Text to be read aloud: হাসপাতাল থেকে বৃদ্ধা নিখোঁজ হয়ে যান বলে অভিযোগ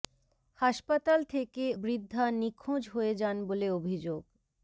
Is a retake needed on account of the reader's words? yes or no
no